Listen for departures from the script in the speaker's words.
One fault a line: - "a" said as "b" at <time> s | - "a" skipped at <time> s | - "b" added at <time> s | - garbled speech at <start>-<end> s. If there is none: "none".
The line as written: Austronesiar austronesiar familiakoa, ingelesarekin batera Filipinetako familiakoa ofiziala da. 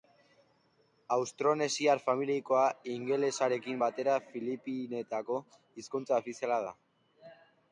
- "austronesiar" skipped at 2.0 s
- "familiakoa" said as "hizkuntza" at 5.8 s